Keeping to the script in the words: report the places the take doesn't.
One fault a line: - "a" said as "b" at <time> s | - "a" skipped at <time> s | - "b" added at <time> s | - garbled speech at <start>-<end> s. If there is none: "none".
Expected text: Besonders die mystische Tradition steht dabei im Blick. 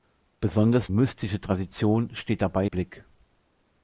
- "die" skipped at 0.9 s
- "im" skipped at 2.7 s